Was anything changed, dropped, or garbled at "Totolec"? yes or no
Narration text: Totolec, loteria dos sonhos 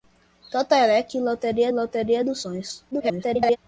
no